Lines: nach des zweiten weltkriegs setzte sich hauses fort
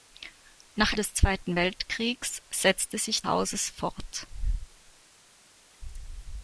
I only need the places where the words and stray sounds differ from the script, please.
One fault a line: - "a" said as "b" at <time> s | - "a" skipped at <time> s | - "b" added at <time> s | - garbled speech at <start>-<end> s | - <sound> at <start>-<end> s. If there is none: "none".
none